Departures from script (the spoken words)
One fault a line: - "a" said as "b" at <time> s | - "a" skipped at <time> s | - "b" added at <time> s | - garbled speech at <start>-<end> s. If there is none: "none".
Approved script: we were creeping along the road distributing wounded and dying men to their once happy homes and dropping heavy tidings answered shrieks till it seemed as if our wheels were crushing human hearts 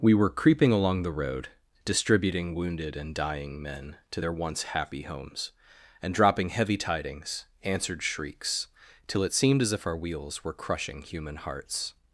none